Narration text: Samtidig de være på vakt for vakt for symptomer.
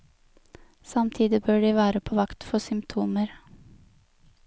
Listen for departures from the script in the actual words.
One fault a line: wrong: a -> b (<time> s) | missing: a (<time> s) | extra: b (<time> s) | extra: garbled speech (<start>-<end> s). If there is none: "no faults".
extra: bør (1.4 s)
missing: vakt for (2.6 s)